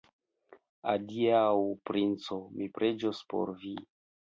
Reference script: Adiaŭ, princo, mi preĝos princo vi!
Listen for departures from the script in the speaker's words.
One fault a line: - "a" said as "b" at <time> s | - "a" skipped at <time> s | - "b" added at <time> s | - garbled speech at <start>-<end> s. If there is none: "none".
- "princo" said as "por" at 3.3 s